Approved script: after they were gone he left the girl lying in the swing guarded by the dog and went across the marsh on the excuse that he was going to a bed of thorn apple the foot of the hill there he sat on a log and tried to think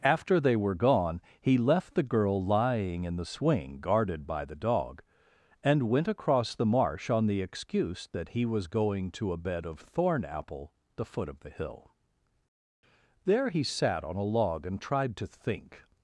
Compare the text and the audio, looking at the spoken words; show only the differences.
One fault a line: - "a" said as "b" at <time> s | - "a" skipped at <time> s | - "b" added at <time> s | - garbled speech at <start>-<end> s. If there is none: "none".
none